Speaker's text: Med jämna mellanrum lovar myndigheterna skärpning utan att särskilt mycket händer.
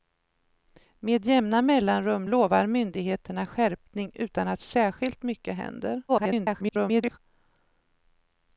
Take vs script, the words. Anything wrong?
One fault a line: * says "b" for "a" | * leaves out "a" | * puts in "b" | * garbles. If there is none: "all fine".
* garbles